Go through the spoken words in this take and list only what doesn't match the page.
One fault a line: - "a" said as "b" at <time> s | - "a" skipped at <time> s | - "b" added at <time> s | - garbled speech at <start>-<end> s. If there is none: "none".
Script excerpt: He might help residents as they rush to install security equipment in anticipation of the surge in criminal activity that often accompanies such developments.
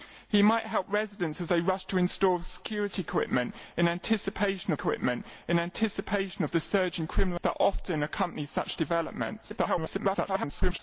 - "equipment in anticipation" added at 4.7 s
- "activity" skipped at 7.4 s
- garbled speech at 9.5-10.8 s